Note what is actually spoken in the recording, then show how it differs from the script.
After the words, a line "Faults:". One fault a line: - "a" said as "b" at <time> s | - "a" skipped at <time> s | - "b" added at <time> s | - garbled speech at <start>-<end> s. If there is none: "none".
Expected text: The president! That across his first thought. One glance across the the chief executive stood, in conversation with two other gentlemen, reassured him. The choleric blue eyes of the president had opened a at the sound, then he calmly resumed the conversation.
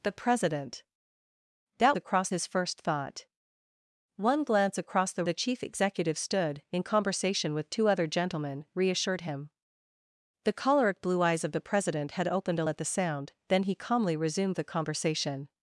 The president! That across his first thought. One glance across the the chief executive stood, in conversation with two other gentlemen, reassured him. The choleric blue eyes of the president had opened a at the sound, then he calmly resumed the conversation.
Faults:
none